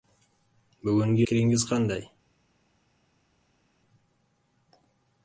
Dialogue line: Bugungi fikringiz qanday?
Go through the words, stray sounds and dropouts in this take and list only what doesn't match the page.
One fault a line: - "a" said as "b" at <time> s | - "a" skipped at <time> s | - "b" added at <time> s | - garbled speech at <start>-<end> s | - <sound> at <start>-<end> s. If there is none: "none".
none